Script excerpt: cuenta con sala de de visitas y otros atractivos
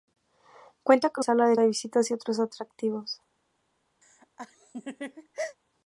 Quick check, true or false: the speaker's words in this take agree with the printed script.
true